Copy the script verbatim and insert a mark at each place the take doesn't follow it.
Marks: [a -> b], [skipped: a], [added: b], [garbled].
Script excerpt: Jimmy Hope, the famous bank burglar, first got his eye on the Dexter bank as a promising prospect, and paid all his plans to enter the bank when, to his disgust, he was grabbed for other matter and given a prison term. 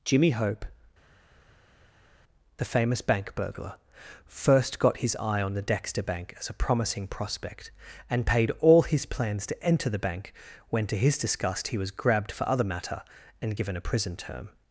Jimmy Hope, the famous bank burglar, first got his eye on the Dexter bank as a promising prospect, and paid all his plans to enter the bank when, to his disgust, he was grabbed for other matter and given a prison term.